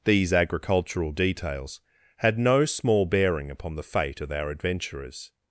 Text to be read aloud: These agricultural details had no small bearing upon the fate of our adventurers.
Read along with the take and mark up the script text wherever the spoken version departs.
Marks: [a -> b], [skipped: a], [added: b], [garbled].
These agricultural details had no small bearing upon the fate of our adventurers.